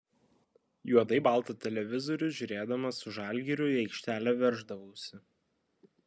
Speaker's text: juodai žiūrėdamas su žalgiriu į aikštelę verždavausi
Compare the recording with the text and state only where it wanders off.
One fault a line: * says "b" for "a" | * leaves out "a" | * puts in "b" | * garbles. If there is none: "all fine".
* puts in "baltą televizorių"